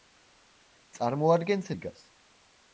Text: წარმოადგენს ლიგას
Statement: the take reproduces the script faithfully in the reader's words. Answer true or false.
true